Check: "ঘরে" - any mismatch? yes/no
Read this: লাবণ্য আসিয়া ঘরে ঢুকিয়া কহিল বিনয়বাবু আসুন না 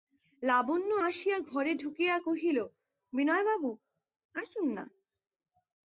no